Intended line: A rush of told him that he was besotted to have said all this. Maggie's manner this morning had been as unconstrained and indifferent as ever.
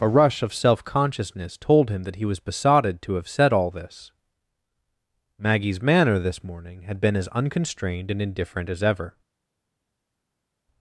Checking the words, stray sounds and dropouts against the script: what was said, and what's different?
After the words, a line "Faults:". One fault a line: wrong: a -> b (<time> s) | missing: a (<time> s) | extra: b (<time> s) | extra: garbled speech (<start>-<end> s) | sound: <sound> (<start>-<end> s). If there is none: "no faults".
A rush of self consciousness told him that he was besotted to have said all this. Maggie's manner this morning had been as unconstrained and indifferent as ever.
Faults:
extra: self consciousness (0.5 s)